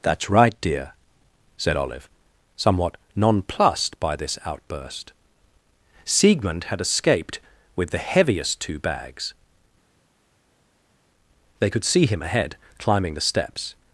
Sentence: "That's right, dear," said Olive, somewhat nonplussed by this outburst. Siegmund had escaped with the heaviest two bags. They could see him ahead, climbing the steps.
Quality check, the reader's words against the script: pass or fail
pass